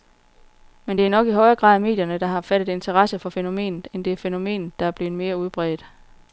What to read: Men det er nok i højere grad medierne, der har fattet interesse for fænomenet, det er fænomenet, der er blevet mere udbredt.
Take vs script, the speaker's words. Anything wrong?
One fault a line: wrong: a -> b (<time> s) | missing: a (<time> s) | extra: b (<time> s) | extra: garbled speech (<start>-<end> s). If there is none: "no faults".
extra: end (3.9 s)